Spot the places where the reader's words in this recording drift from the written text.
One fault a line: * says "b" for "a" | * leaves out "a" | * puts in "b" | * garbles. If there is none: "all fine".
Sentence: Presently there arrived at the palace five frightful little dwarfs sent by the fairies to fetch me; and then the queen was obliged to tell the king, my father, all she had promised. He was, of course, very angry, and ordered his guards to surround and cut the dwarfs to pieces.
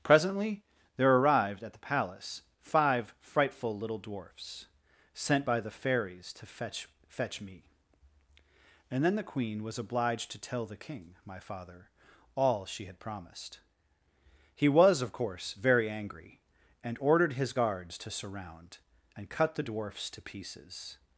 * puts in "fetch"